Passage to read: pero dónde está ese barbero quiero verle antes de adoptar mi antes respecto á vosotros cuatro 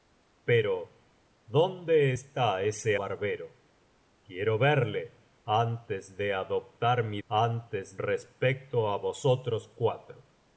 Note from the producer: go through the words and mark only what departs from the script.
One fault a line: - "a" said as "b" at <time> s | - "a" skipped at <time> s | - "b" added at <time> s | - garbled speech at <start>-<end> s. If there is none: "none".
none